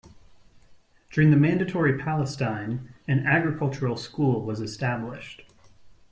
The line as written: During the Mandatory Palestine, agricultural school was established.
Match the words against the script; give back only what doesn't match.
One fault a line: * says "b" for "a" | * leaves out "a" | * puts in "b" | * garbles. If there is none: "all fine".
* puts in "an"